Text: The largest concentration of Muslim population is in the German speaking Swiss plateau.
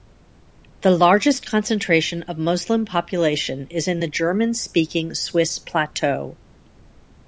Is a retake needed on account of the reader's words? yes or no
no